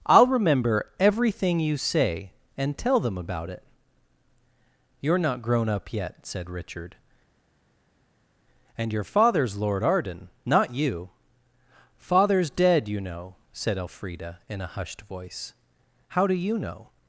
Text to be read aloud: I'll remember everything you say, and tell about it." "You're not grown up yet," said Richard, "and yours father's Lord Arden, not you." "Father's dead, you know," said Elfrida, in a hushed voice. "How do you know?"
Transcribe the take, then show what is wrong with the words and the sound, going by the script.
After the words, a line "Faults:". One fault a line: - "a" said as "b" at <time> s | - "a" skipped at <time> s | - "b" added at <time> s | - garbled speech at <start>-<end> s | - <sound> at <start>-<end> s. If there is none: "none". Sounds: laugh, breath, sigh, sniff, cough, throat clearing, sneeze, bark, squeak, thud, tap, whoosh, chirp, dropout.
I'll remember everything you say, and tell them about it." "You're not grown up yet," said Richard, "and your father's Lord Arden, not you." "Father's dead, you know," said Elfrida, in a hushed voice. "How do you know?"
Faults:
- "them" added at 3.0 s
- "yours" said as "your" at 8.9 s